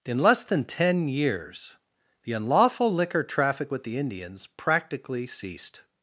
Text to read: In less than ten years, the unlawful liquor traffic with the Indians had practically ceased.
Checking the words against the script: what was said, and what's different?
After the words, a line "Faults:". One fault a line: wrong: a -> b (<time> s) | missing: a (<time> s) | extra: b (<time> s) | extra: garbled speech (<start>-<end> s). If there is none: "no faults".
In less than ten years, the unlawful liquor traffic with the Indians practically ceased.
Faults:
missing: had (4.5 s)